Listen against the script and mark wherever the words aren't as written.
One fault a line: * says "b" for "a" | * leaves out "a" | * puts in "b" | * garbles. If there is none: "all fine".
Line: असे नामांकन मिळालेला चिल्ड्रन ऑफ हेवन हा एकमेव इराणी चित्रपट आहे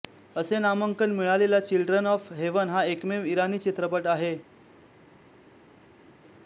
all fine